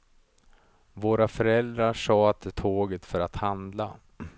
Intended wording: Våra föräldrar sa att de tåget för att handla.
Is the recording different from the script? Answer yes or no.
no